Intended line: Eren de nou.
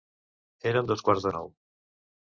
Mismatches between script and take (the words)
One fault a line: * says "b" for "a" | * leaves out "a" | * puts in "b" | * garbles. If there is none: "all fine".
* puts in "dos quarts"